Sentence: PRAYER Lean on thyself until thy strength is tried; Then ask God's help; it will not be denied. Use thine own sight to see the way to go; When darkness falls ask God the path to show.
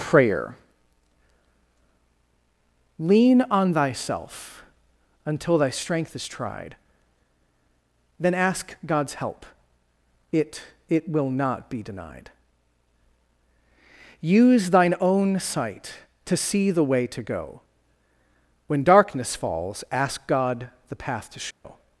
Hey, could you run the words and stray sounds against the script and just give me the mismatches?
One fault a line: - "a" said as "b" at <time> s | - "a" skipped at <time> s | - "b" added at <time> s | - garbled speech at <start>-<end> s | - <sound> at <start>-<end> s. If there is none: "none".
- "it" added at 10.9 s
- dropout at 21.5-21.6 s